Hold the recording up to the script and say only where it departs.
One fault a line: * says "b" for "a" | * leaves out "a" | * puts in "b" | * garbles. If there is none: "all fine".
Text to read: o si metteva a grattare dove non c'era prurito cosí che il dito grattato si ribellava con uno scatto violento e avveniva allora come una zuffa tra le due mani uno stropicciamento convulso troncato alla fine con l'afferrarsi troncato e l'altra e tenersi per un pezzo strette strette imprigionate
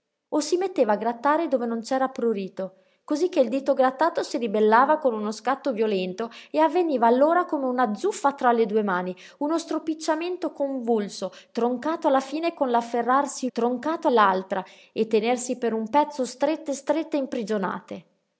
all fine